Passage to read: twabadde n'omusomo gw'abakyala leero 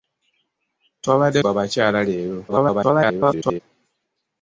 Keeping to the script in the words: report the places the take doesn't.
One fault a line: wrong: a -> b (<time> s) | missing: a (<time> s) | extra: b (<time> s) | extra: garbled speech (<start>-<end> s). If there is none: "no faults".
missing: n'omusomo (1.4 s)
extra: garbled speech (2.5-3.6 s)